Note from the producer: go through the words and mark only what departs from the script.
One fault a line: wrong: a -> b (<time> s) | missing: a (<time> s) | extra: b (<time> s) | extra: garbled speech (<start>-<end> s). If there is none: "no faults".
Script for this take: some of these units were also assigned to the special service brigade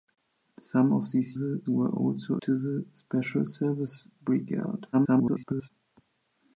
wrong: units -> the (1.3 s)
missing: assigned (2.4 s)
extra: garbled speech (4.9-5.7 s)